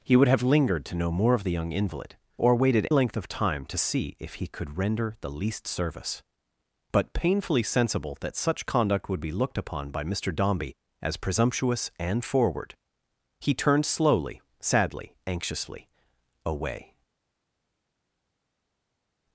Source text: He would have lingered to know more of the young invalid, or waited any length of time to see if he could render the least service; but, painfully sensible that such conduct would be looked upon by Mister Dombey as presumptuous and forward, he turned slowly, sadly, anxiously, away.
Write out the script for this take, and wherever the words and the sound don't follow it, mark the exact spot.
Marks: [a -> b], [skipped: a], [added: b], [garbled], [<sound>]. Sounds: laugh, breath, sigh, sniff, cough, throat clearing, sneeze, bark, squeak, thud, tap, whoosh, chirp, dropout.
He would have lingered to know more of the young invalid, or waited [skipped: any] length of time to see if he could render the least service; but, painfully sensible that such conduct would be looked upon by Mister Dombey as presumptuous and forward, he turned slowly, sadly, anxiously, away.